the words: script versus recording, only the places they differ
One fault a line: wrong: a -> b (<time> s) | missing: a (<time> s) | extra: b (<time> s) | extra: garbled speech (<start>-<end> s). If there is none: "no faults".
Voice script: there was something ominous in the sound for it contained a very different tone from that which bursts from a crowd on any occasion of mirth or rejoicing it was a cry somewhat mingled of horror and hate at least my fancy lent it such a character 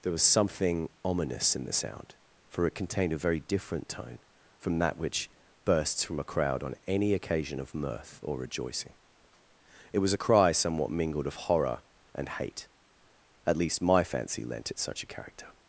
no faults